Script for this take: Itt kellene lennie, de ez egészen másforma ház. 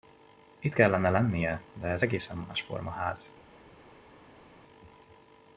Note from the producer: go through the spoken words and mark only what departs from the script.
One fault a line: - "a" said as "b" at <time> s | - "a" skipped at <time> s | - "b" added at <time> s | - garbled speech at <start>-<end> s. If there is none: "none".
none